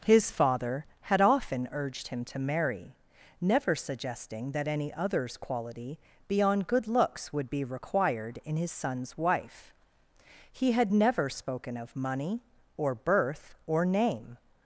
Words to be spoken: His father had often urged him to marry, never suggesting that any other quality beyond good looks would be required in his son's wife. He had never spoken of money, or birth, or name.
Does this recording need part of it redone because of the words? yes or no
yes